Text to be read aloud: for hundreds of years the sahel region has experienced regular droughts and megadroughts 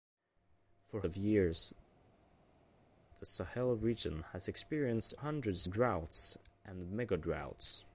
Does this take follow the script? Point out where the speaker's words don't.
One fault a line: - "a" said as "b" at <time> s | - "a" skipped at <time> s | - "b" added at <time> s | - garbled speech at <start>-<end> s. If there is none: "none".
- "hundreds" skipped at 1.0 s
- "regular" said as "hundreds" at 5.1 s